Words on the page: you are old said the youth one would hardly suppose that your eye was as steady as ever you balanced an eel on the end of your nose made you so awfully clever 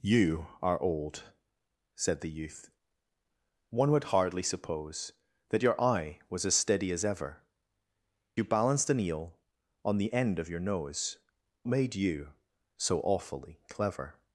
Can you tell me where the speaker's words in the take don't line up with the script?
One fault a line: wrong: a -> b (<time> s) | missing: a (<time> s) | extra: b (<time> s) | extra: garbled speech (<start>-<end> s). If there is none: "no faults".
no faults